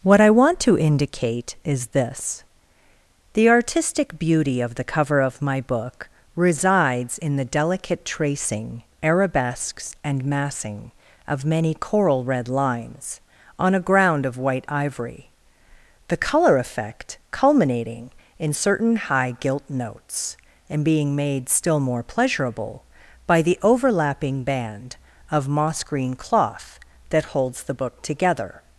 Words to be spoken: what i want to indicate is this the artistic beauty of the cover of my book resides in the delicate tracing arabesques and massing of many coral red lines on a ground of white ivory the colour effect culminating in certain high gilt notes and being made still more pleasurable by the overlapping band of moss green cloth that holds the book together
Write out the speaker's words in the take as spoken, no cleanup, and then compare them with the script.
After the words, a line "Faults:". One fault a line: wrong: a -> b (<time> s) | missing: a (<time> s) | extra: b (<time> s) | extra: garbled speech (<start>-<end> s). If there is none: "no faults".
what i want to indicate is this the artistic beauty of the cover of my book resides in the delicate tracing arabesques and massing of many coral red lines on a ground of white ivory the colour effect culminating in certain high gilt notes and being made still more pleasurable by the overlapping band of moss green cloth that holds the book together
Faults:
no faults